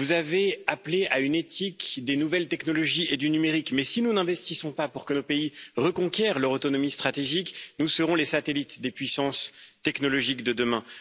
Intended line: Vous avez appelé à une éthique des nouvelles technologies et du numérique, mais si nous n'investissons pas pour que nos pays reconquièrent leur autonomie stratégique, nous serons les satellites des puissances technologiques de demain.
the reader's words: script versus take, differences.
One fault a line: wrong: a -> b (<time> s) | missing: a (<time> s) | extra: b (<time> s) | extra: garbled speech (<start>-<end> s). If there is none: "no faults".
no faults